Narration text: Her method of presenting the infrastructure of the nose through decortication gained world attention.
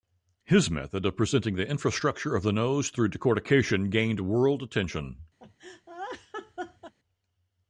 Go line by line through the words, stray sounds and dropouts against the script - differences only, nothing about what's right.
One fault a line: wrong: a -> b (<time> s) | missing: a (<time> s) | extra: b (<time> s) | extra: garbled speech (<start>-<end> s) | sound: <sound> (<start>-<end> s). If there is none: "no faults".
wrong: Her -> His (0.5 s)
sound: laugh (5.4-6.9 s)